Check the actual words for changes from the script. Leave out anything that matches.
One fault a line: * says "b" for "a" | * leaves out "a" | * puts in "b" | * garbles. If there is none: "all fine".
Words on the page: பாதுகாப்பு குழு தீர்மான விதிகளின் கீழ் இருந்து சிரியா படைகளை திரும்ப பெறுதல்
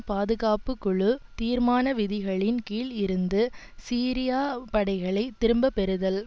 all fine